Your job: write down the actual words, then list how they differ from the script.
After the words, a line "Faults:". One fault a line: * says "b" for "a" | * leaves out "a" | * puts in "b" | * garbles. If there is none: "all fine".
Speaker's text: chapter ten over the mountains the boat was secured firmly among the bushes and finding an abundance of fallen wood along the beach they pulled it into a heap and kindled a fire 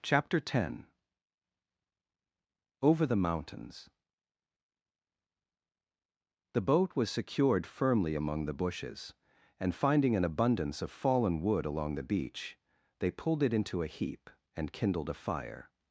chapter ten over the mountains the boat was secured firmly among the bushes and finding an abundance of fallen wood along the beach they pulled it into a heap and kindled a fire
Faults:
all fine